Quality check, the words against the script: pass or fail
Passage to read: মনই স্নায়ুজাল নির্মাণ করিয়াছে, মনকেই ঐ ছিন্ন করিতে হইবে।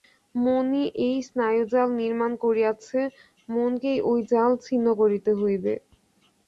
fail